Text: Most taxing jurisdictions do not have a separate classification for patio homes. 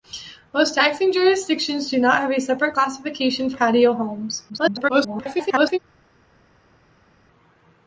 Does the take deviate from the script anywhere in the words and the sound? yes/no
yes